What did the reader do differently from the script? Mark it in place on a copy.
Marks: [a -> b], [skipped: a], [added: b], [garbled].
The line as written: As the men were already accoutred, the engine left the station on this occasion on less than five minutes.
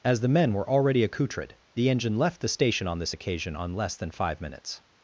As the men were already accoutred, the engine left the station on this occasion on less than five minutes.